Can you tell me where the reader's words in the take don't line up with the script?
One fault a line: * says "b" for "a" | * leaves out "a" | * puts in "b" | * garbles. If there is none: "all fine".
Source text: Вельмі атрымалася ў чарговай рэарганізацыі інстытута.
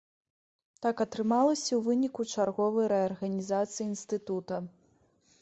* says "Так" for "Вельмі"
* puts in "выніку"